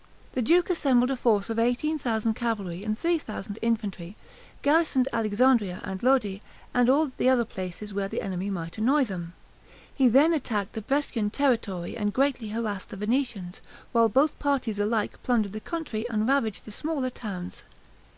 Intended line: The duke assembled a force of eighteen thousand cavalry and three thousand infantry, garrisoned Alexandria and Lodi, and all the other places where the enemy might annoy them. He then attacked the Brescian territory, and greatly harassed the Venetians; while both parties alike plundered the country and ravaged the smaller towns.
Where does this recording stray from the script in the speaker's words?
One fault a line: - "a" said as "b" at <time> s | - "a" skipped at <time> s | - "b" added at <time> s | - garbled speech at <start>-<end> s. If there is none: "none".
none